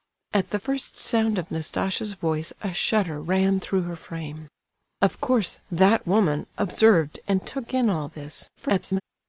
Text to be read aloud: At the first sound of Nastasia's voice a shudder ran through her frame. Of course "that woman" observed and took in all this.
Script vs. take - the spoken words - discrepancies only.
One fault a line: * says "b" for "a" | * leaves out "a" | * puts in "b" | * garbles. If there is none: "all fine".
* garbles